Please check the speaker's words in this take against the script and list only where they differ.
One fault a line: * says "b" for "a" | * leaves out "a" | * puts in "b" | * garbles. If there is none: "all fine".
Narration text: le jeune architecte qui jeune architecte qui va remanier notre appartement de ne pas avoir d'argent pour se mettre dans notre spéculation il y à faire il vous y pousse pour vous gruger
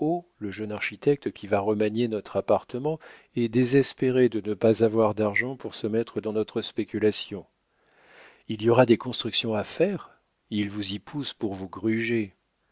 * leaves out "jeune architecte qui"
* puts in "est désespéré"
* puts in "aura des constructions"